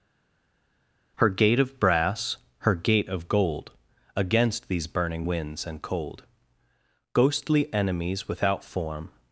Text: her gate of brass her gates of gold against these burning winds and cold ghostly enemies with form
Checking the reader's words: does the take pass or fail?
fail